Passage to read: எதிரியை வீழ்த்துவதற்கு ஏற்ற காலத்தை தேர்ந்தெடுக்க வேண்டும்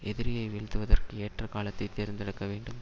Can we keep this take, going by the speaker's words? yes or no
yes